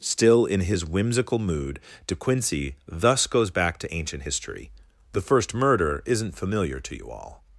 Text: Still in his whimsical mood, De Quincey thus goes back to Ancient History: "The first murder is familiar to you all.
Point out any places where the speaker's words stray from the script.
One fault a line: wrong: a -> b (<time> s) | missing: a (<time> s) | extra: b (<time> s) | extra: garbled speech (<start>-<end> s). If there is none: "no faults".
wrong: is -> isn't (6.0 s)